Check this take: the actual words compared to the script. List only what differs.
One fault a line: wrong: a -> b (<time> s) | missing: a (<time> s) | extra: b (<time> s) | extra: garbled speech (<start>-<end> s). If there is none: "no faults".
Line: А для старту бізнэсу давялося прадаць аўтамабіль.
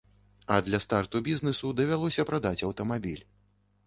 no faults